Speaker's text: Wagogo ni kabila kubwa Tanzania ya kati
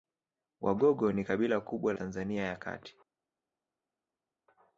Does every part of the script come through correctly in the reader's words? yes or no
yes